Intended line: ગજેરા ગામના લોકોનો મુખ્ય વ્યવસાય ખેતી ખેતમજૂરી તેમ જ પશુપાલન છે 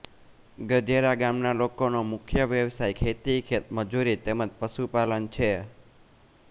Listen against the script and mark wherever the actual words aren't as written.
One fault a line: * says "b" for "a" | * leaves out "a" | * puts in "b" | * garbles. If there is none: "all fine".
all fine